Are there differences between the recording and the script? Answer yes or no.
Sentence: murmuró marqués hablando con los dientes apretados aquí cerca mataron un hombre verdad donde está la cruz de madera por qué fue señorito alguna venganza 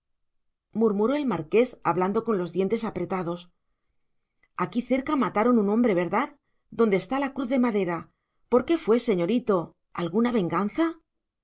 yes